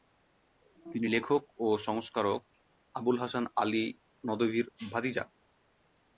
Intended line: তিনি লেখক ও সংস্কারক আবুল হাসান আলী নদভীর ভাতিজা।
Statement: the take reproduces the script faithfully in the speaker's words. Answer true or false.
true